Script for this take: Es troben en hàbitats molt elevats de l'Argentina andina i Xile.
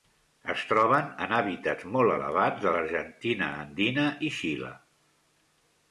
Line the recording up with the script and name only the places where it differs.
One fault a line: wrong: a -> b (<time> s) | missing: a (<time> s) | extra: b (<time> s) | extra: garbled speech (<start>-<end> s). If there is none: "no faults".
no faults